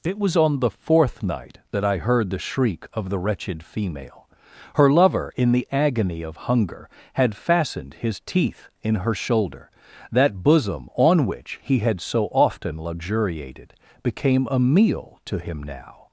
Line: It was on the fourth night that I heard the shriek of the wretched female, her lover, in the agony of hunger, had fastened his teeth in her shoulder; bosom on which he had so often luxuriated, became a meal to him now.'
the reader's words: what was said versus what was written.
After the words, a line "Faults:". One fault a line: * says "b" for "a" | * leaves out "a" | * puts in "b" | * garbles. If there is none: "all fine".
It was on the fourth night that I heard the shriek of the wretched female, her lover, in the agony of hunger, had fastened his teeth in her shoulder; that bosom on which he had so often luxuriated, became a meal to him now.'
Faults:
* puts in "that"